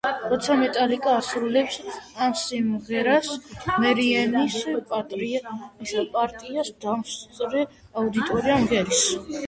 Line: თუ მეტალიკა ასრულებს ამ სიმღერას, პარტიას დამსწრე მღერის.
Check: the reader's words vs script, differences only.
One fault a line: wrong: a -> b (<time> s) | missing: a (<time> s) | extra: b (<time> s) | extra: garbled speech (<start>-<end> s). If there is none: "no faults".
wrong: თუ -> როცა (0.3 s)
extra: მერიენის (3.8 s)
extra: აუდიტორია (8.0 s)